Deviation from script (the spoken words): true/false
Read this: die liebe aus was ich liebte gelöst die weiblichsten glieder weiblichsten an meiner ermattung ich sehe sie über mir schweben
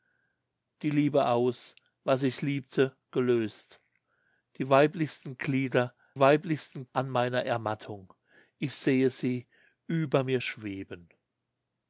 false